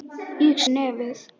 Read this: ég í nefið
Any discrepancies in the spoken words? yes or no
no